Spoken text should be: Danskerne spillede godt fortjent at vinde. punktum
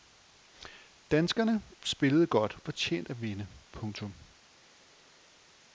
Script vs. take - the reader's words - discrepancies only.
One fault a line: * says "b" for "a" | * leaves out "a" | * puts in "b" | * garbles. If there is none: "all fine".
all fine